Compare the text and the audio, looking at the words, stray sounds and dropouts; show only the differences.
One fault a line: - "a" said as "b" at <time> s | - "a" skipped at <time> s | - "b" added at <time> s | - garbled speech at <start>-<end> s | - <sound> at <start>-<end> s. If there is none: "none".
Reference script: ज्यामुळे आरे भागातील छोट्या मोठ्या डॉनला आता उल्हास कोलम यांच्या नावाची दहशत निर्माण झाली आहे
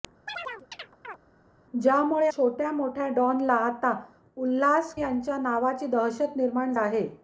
- chirp at 0.3-1.2 s
- "आरे भागातील" skipped at 2.3 s
- "कोलम" skipped at 4.9 s
- "झाली" skipped at 6.7 s